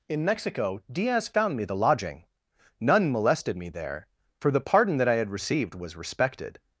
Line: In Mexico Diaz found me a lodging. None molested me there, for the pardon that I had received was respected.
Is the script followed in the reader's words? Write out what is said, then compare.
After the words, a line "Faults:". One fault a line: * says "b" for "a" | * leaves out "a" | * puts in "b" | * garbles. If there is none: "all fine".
In Mexico Diaz found me the lodging. None molested me there, for the pardon that I had received was respected.
Faults:
* says "the" for "a"